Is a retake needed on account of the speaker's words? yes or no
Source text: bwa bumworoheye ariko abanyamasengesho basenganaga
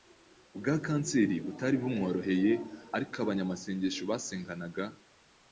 yes